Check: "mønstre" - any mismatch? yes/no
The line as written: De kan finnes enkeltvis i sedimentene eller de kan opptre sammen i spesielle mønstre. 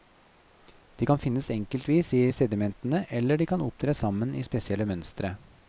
no